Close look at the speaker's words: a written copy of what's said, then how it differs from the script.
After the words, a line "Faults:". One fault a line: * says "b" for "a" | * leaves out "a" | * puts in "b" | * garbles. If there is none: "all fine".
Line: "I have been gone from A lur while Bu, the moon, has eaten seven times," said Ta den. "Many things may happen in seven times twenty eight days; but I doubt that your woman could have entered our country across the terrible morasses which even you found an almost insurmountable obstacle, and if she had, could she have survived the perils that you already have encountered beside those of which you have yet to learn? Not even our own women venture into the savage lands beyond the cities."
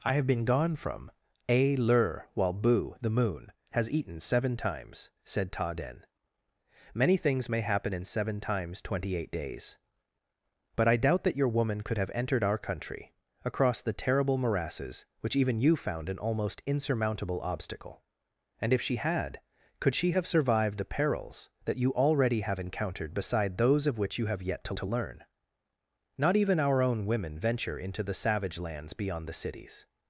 "I have been gone from A lur while Bu, the moon, has eaten seven times," said Ta den. "Many things may happen in seven times twenty eight days; but I doubt that your woman could have entered our country across the terrible morasses which even you found an almost insurmountable obstacle, and if she had, could she have survived the perils that you already have encountered beside those of which you have yet to to learn? Not even our own women venture into the savage lands beyond the cities."
Faults:
* puts in "to"